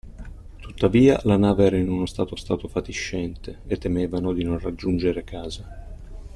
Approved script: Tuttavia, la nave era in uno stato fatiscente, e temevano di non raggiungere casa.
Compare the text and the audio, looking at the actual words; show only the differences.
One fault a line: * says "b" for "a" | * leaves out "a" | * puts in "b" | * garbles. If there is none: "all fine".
* puts in "stato"